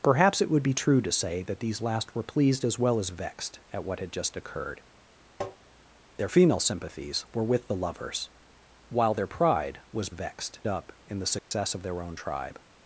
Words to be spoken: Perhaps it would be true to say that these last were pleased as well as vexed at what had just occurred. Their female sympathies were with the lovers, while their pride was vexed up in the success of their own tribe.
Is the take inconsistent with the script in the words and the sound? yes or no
yes